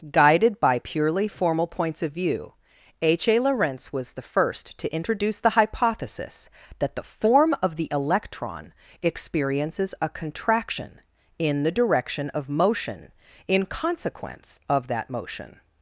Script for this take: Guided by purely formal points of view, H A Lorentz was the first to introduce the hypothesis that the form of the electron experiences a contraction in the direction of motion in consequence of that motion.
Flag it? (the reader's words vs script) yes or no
no